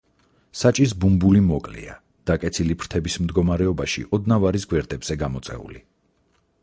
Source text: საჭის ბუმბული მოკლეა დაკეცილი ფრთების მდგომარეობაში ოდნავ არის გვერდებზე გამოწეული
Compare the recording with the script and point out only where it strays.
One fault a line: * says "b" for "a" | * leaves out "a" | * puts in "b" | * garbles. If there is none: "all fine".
all fine